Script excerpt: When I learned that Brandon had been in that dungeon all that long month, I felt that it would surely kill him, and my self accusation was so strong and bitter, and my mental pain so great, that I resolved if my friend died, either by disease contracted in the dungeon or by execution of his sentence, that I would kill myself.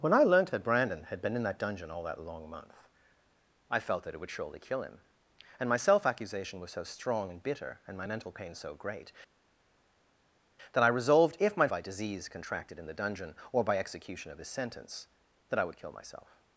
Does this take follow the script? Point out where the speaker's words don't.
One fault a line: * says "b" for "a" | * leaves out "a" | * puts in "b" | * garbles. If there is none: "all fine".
* leaves out "friend died either"